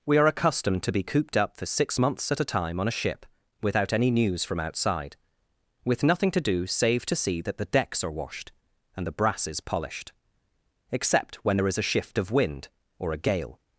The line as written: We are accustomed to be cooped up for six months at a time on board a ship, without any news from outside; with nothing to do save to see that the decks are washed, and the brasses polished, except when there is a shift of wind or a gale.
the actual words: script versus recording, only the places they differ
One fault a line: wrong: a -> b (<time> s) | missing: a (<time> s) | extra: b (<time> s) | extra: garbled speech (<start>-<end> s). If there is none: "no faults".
missing: board (2.9 s)